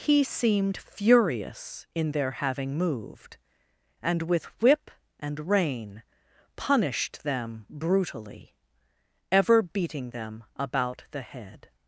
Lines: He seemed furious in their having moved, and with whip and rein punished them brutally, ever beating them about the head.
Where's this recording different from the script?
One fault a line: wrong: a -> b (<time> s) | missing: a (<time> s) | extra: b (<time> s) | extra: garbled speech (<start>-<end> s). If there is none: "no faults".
no faults